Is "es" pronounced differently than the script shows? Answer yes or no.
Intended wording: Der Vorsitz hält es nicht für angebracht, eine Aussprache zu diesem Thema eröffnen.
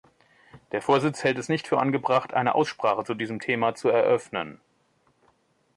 no